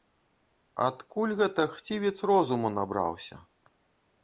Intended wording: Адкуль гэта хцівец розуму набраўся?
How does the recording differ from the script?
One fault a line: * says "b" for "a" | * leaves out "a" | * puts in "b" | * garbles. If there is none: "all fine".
all fine